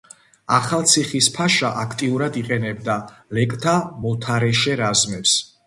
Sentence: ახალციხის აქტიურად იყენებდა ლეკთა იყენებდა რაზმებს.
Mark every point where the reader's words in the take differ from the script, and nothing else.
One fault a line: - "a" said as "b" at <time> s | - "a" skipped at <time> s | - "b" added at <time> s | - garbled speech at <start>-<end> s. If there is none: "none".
- "ფაშა" added at 1.4 s
- "იყენებდა" said as "მოთარეშე" at 4.1 s